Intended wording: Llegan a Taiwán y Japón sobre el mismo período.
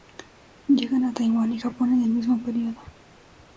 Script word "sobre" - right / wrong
wrong